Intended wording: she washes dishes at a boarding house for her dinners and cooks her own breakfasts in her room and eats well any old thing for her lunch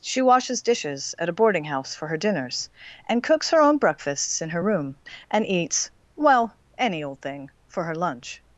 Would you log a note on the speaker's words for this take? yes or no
no